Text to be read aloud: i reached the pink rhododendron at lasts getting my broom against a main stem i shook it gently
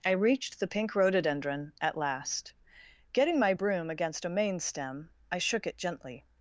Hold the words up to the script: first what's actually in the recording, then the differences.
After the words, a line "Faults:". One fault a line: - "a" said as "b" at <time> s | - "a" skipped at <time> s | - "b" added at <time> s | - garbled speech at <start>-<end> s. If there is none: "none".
i reached the pink rhododendron at last getting my broom against a main stem i shook it gently
Faults:
- "lasts" said as "last" at 1.9 s